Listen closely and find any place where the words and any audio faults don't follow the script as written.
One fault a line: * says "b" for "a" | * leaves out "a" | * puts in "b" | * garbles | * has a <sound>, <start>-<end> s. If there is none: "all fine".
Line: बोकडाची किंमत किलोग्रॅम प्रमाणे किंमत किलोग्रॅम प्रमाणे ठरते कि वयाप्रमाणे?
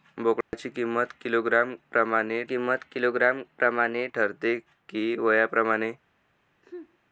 * has a dropout, 0.4-0.5 s
* has a sneeze, 6.6-7.0 s